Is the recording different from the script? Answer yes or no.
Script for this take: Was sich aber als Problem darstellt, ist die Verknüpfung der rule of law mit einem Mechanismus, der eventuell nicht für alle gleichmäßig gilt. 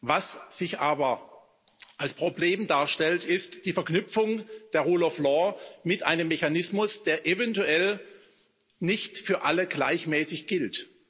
no